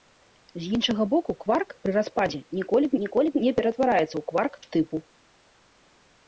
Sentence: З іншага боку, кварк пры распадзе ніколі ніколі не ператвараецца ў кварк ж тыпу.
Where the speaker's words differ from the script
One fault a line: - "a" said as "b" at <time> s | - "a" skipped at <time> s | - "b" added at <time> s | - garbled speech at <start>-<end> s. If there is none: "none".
none